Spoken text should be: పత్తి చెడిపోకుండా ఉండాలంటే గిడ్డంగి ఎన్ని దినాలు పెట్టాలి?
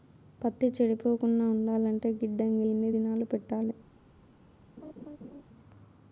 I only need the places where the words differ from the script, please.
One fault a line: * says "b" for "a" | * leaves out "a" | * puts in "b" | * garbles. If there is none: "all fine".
all fine